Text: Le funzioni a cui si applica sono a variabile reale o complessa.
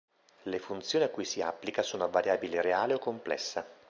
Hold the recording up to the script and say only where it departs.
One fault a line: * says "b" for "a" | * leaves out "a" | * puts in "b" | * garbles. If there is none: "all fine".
all fine